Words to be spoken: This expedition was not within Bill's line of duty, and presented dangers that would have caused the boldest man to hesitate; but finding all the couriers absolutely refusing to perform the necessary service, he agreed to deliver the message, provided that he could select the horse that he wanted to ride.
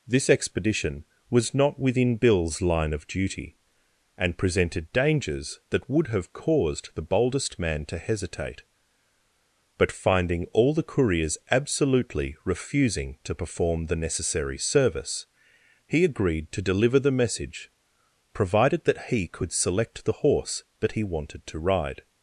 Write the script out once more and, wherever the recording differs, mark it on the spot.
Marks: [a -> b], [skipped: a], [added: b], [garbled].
This expedition was not within Bill's line of duty, and presented dangers that would have caused the boldest man to hesitate; but finding all the couriers absolutely refusing to perform the necessary service, he agreed to deliver the message, provided that he could select the horse that he wanted to ride.